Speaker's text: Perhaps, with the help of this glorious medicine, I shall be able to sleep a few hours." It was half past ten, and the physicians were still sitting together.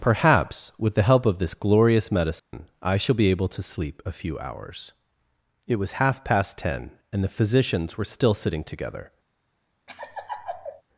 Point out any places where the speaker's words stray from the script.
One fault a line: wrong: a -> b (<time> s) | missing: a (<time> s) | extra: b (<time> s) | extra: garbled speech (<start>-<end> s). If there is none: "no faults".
no faults